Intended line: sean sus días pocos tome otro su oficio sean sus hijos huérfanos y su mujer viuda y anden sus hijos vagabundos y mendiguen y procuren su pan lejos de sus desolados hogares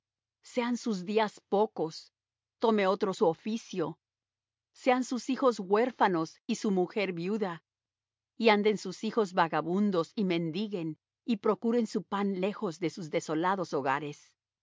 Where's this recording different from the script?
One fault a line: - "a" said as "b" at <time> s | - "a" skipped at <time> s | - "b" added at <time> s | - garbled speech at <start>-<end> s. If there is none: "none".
none